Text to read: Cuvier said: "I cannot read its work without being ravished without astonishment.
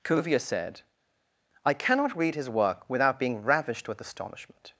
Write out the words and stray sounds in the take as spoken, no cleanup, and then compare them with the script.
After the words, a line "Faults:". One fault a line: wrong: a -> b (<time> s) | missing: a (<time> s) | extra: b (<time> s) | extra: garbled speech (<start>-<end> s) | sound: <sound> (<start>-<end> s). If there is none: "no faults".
Cuvier said: "I cannot read his work without being ravished with astonishment.
Faults:
wrong: its -> his (2.3 s)
wrong: without -> with (3.9 s)